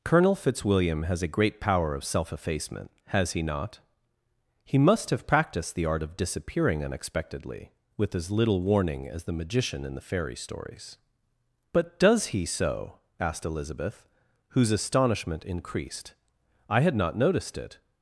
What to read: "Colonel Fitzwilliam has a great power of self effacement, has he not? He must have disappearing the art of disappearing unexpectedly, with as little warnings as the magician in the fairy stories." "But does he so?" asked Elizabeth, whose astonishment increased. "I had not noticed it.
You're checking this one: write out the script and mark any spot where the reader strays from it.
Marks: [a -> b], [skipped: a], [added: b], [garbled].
"Colonel Fitzwilliam has a great power of self effacement, has he not? He must have [disappearing -> practiced] the art of disappearing unexpectedly, with as little [warnings -> warning] as the magician in the fairy stories." "But does he so?" asked Elizabeth, whose astonishment increased. "I had not noticed it.